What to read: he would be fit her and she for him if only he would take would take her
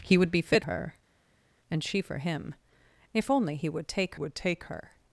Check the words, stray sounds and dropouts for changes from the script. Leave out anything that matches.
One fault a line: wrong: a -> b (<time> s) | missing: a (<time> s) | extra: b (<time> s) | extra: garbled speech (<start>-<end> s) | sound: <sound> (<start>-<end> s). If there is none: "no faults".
no faults